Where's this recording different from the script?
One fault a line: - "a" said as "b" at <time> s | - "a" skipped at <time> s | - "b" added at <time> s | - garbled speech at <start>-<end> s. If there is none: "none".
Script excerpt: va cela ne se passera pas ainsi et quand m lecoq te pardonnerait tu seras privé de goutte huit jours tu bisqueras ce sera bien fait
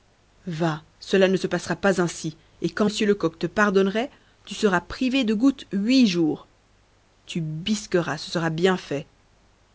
none